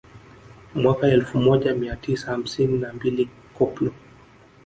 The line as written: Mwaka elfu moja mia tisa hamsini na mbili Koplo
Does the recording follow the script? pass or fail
pass